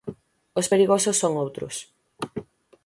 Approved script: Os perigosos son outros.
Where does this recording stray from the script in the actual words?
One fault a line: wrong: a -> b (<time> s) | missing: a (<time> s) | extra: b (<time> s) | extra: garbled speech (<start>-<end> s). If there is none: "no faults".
no faults